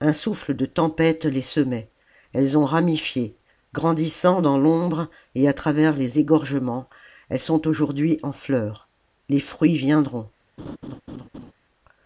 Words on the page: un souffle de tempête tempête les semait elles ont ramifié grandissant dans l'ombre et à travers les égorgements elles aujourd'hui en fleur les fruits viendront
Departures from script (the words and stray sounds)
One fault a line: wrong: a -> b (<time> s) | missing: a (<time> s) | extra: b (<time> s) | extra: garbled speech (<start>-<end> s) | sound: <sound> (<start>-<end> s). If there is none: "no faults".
missing: tempête (1.2 s)
extra: sont (7.4 s)
sound: laugh (10.6-11.5 s)